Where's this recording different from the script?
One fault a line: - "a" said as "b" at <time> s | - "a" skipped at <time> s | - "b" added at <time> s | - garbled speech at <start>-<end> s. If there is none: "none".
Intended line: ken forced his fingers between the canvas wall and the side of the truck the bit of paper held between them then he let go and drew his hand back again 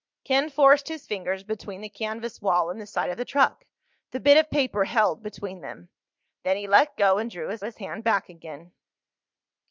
- "his" added at 7.6 s